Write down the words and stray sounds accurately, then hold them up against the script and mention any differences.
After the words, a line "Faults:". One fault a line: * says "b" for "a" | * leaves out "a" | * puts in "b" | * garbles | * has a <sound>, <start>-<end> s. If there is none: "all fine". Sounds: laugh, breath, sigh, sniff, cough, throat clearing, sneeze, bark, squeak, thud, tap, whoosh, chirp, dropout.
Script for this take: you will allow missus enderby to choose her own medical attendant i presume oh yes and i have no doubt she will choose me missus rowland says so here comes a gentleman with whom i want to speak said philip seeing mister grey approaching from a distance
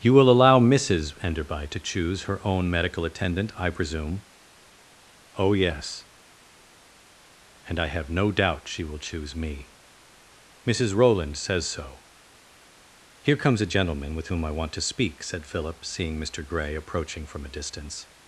you will allow missus enderby to choose her own medical attendant i presume oh yes and i have no doubt she will choose me missus rowland says so here comes a gentleman with whom i want to speak said philip seeing mister grey approaching from a distance
Faults:
all fine